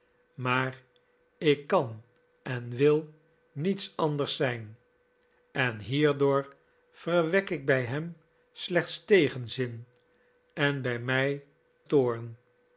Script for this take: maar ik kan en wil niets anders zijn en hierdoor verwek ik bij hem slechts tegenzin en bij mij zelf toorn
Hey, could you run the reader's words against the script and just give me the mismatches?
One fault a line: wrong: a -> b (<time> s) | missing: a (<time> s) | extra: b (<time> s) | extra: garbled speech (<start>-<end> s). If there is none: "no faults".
missing: zelf (11.4 s)